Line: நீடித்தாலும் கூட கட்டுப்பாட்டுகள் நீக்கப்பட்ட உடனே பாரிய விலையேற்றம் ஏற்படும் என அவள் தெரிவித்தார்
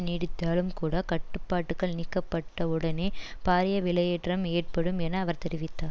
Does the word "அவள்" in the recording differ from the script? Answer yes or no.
yes